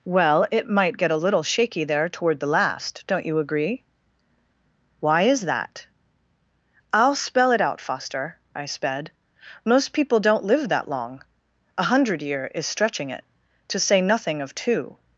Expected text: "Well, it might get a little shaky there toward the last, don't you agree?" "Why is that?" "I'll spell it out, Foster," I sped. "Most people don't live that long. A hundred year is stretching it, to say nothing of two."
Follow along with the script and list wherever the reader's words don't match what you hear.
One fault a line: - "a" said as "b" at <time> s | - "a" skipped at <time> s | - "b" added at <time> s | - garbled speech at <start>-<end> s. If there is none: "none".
none